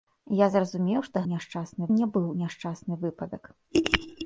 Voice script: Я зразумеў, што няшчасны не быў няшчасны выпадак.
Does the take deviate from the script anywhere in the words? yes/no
no